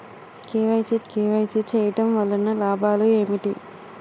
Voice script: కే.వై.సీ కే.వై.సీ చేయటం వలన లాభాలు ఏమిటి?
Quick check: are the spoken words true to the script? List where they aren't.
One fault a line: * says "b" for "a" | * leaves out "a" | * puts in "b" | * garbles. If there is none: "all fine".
all fine